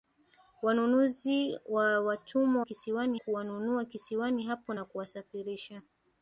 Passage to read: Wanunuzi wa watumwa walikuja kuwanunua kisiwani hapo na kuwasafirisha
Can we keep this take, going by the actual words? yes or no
no